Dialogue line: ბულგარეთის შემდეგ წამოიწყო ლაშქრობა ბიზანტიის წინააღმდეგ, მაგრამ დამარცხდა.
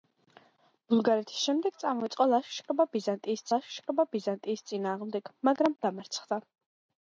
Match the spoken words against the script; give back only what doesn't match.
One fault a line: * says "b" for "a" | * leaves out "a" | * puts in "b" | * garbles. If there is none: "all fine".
* puts in "ლაშქრობა ბიზანტიის"